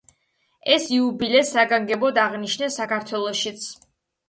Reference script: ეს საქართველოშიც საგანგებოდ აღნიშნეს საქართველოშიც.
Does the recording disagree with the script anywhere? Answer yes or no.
yes